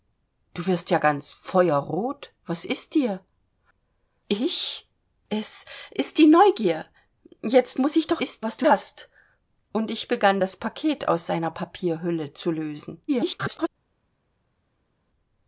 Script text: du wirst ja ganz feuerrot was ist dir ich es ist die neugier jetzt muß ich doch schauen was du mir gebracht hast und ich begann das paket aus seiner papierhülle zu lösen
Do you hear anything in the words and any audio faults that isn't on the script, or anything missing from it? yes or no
yes